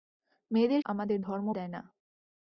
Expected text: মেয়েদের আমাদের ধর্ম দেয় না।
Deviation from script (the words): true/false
false